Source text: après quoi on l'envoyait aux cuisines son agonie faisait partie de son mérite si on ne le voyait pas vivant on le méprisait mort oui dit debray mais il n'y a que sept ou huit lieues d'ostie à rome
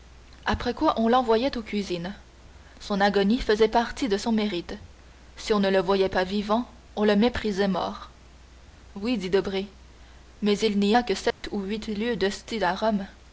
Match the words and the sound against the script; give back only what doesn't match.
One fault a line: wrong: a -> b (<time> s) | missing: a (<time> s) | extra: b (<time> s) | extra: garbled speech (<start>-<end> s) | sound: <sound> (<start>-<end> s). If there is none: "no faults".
sound: dropout (11.3-11.4 s)